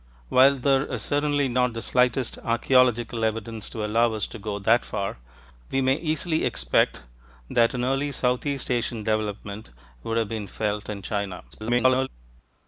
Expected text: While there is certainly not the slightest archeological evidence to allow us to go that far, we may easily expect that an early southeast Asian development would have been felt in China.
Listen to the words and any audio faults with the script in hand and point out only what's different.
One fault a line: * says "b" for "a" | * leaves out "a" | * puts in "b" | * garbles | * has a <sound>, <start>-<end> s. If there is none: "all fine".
* garbles